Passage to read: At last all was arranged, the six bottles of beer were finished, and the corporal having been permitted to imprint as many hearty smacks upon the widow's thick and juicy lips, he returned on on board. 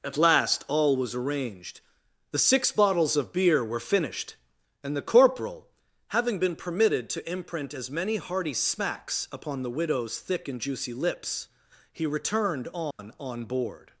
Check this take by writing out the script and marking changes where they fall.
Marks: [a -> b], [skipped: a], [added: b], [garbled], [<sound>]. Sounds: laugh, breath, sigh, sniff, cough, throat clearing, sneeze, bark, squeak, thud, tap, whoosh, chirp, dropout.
At last all was arranged, the six bottles of beer were finished, and the corporal having been permitted to imprint as many hearty smacks upon the widow's thick and juicy lips, he returned on [dropout] on board.